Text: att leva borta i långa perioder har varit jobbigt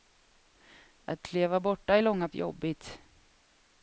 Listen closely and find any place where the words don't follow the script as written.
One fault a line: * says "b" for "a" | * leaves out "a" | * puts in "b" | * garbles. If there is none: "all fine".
* leaves out "perioder har varit"